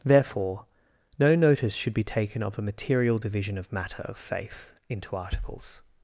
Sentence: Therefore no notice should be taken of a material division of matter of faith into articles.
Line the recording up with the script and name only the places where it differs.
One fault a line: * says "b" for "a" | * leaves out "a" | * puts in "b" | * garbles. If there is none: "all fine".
all fine